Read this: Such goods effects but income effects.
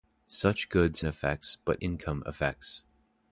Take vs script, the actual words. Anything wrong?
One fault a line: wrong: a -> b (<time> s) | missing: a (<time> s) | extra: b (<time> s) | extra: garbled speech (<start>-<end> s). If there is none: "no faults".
no faults